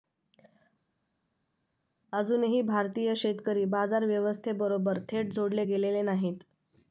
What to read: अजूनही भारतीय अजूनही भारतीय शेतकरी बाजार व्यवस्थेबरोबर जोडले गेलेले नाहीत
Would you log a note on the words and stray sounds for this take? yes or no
yes